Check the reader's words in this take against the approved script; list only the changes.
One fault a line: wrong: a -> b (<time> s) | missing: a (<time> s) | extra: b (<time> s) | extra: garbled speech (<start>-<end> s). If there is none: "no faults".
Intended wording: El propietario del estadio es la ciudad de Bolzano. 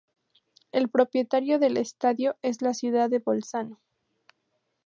no faults